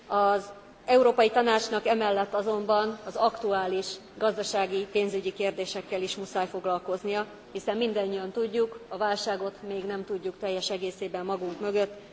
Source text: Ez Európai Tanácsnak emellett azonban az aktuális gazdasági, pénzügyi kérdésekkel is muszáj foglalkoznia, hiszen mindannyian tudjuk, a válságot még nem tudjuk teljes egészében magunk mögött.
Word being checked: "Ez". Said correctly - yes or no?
no